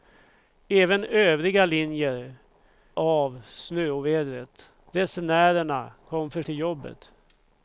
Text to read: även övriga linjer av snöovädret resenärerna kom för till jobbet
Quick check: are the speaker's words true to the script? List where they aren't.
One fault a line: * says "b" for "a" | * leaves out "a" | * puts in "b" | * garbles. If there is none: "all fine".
all fine